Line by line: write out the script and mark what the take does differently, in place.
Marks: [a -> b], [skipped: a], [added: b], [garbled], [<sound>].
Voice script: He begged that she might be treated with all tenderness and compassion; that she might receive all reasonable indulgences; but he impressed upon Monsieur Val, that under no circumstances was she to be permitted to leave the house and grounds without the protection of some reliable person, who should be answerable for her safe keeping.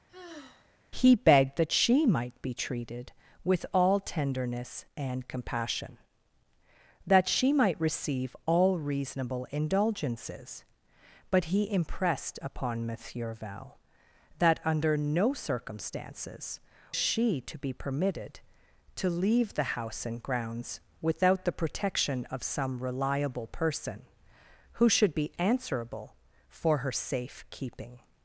[sigh] He begged that she might be treated with all tenderness and compassion; that she might receive all reasonable indulgences; but he impressed upon Monsieur Val, that under no circumstances [skipped: was] she to be permitted to leave the house and grounds without the protection of some reliable person, who should be answerable for her safe keeping.